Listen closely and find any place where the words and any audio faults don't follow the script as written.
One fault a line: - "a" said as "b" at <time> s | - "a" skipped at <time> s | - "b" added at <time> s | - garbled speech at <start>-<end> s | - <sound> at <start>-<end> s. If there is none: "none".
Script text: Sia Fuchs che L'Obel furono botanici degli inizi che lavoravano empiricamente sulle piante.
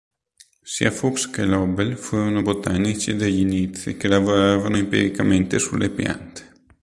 none